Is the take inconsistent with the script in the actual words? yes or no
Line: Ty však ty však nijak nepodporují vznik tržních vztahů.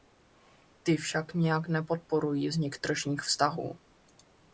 yes